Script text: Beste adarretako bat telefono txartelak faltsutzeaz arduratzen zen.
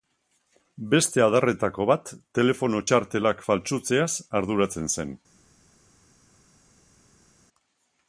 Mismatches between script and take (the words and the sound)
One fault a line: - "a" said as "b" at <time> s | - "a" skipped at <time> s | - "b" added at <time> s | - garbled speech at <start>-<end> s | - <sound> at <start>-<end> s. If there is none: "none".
none